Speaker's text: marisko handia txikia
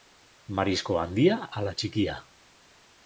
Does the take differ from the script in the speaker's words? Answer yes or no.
yes